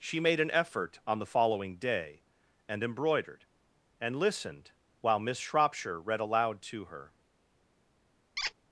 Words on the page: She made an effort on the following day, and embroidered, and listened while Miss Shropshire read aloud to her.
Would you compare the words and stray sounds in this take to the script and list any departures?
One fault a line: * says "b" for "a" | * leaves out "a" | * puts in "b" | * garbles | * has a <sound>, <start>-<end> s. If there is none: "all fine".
* has a squeak, 8.4-8.5 s